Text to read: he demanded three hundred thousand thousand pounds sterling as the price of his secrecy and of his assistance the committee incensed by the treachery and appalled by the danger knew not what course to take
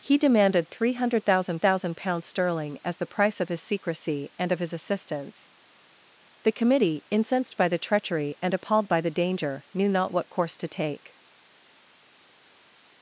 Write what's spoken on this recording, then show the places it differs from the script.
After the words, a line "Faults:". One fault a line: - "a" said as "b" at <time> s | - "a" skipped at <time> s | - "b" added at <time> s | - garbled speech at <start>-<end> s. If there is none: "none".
he demanded three hundred thousand thousand pounds sterling as the price of his secrecy and of his assistance the committee incensed by the treachery and appalled by the danger knew not what course to take
Faults:
none